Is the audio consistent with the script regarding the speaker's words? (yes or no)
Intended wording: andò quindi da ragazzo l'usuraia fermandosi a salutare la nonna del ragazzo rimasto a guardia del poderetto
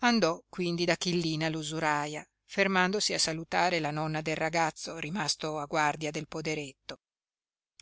no